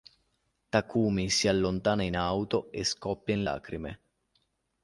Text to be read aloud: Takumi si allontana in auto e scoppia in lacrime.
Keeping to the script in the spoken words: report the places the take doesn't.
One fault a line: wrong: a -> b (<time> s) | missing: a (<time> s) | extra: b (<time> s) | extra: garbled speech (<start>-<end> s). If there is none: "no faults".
no faults